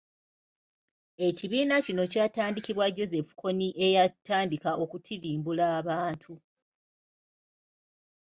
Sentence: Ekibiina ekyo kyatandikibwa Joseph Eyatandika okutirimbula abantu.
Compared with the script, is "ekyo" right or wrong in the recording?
wrong